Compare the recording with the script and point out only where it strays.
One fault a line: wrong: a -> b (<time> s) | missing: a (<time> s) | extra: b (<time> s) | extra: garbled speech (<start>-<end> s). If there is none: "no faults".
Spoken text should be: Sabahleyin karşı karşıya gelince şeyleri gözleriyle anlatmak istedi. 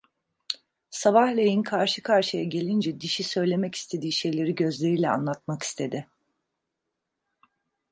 extra: dişi söylemek istediği (3.0 s)